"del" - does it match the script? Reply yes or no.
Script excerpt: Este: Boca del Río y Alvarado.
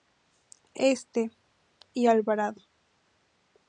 no